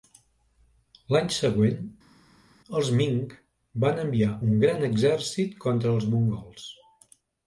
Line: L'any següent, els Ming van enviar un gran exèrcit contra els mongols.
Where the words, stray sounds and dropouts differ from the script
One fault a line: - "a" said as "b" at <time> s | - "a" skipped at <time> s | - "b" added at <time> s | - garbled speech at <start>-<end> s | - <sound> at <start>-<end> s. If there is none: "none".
none